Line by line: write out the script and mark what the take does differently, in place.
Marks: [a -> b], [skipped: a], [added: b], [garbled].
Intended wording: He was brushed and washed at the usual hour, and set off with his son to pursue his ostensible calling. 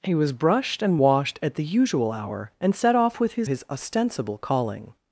He was brushed and washed at the usual hour, and set off with his [skipped: son to pursue] his ostensible calling.